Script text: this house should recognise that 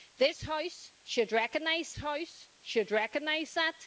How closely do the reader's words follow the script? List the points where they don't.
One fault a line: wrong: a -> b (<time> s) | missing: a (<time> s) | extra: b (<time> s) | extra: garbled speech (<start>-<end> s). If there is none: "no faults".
extra: house should recognise (2.0 s)